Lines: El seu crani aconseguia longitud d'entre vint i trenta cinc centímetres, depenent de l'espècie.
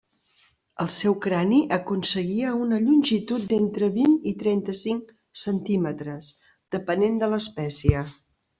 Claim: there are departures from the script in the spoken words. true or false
true